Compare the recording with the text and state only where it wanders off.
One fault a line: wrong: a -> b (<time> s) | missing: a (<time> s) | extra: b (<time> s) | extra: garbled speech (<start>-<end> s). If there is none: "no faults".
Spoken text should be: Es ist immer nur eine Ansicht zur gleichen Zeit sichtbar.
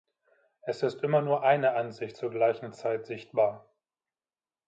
no faults